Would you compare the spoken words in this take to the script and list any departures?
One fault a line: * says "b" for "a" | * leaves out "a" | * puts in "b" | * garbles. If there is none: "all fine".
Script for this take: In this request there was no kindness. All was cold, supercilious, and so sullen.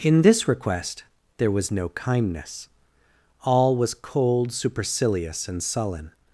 * leaves out "so"